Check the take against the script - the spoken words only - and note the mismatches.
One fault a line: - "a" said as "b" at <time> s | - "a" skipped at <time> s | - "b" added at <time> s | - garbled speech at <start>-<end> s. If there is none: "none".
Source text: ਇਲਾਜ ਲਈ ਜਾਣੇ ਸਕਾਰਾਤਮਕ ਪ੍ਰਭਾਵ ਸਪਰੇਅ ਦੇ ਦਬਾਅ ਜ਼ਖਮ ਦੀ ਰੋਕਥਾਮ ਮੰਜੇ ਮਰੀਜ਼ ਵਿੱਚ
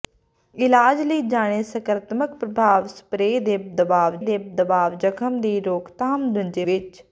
- "ਦੇ ਦਬਾਅ" added at 4.2 s
- "ਮਰੀਜ਼" skipped at 6.7 s